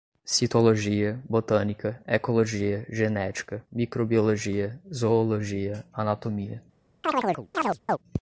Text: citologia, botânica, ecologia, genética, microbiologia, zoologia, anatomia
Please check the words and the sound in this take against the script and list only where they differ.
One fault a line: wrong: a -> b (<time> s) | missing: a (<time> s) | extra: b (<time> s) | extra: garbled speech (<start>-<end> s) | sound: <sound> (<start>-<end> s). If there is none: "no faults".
sound: chirp (7.0-8.0 s)